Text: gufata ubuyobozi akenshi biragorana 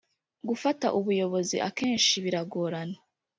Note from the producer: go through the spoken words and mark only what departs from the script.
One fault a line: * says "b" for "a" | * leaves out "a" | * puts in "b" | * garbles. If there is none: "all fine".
all fine